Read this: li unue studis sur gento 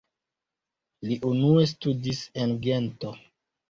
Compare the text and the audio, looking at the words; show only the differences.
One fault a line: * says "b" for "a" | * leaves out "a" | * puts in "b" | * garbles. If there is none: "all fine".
* says "en" for "sur"